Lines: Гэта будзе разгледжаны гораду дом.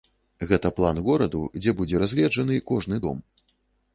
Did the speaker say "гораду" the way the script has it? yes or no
no